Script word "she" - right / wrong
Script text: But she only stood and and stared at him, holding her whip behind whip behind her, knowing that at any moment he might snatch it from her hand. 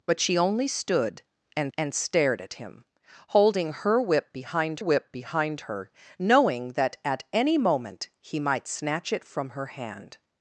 right